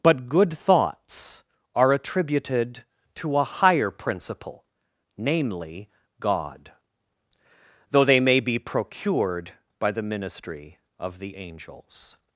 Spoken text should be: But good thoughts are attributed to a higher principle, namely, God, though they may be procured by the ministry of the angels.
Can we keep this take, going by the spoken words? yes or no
yes